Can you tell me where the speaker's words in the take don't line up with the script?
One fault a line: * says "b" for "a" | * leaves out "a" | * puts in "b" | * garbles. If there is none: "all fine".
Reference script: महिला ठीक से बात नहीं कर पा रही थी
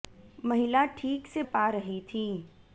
* leaves out "बात नहीं कर"